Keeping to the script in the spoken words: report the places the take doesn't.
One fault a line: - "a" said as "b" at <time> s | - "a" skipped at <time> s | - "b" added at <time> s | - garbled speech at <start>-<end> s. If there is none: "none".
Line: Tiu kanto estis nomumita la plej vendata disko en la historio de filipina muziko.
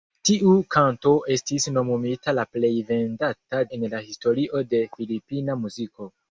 - "disko" skipped at 3.6 s